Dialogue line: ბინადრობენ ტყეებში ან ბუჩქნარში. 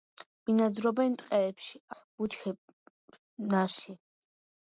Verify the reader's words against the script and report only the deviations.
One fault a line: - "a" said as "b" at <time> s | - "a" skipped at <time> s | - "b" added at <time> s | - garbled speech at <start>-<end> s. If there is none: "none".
- "ან" skipped at 1.8 s